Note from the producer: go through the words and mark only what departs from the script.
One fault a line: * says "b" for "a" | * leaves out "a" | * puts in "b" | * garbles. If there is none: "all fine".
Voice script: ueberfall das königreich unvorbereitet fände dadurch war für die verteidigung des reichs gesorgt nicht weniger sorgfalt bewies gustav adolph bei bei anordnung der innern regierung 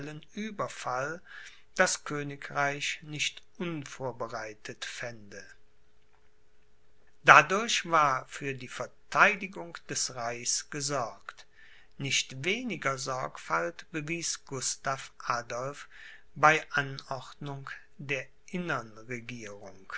* puts in "nicht"
* leaves out "bei"